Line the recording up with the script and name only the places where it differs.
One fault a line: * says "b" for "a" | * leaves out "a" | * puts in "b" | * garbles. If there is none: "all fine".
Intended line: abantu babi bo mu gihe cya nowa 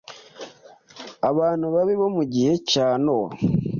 all fine